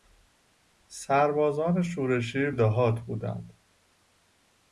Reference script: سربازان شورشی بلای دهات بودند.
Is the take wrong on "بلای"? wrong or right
wrong